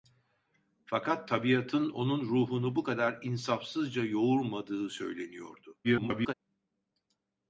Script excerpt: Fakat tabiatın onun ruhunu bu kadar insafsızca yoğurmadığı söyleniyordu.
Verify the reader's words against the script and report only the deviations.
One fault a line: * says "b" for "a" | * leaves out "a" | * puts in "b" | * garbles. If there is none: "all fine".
* garbles